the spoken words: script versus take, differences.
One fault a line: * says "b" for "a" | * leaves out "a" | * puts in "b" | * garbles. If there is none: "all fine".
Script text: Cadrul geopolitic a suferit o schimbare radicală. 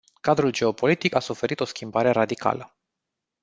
all fine